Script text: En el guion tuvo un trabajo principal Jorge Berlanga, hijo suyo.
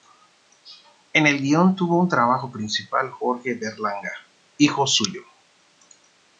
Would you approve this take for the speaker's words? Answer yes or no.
yes